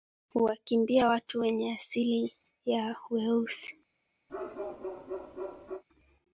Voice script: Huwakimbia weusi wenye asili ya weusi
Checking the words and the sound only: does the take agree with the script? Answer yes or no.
no